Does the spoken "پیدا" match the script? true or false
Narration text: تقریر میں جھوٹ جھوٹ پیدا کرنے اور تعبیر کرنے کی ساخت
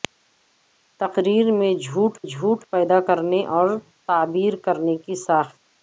true